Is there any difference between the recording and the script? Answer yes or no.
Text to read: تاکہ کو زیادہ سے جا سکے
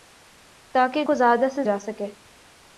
no